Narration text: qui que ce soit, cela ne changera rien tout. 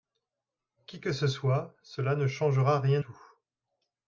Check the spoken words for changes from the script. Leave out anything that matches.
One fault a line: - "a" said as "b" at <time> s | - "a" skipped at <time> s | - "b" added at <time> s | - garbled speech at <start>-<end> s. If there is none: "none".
none